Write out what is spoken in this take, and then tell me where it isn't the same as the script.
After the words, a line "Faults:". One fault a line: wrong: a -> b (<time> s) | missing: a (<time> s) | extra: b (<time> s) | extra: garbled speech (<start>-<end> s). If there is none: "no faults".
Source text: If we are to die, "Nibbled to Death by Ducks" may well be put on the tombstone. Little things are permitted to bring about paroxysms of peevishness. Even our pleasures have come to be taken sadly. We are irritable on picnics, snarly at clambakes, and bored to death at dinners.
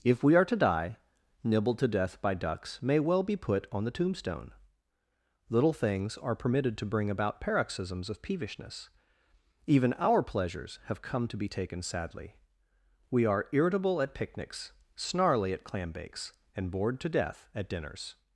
If we are to die, "Nibbled to Death by Ducks" may well be put on the tombstone. Little things are permitted to bring about paroxysms of peevishness. Even our pleasures have come to be taken sadly. We are irritable at picnics, snarly at clambakes, and bored to death at dinners.
Faults:
wrong: on -> at (14.0 s)